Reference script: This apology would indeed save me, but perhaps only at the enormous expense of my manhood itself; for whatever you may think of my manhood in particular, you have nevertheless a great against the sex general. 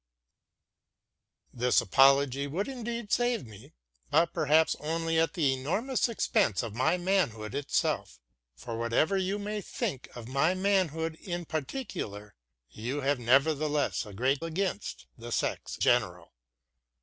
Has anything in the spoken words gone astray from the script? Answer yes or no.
no